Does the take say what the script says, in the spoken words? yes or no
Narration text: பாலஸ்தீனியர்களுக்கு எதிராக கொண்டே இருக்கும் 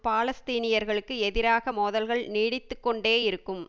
no